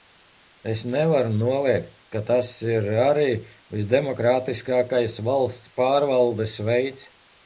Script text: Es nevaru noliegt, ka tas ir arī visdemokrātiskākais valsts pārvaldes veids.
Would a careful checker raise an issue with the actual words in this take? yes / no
no